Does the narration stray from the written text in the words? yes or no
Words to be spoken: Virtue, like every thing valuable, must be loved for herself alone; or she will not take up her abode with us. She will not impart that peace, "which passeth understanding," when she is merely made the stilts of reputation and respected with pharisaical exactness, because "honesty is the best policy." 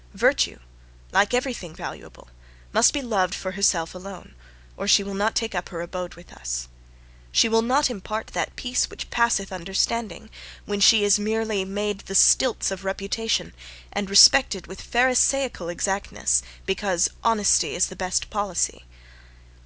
no